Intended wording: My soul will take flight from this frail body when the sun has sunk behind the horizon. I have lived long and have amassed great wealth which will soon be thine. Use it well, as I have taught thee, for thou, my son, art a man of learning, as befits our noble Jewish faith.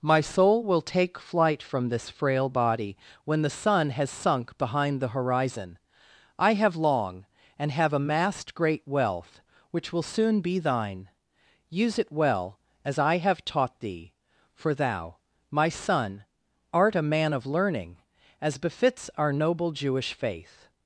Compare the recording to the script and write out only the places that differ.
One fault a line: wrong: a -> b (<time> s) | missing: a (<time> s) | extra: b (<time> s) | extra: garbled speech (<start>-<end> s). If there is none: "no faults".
missing: lived (6.8 s)